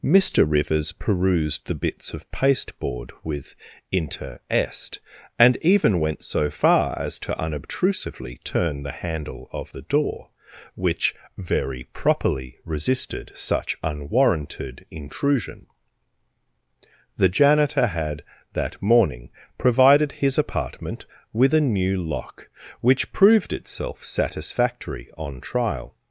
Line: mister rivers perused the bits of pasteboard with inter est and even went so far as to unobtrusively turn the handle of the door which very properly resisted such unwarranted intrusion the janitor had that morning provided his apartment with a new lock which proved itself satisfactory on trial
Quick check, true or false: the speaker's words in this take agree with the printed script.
true